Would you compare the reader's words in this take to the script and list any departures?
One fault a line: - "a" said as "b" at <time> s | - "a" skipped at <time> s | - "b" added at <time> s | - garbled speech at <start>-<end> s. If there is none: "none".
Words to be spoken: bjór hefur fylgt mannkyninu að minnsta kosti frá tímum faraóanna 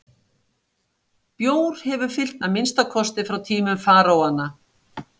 - "mannkyninu" skipped at 2.4 s